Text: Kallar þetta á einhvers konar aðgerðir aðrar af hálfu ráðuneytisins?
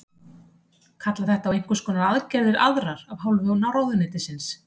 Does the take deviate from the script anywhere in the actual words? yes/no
no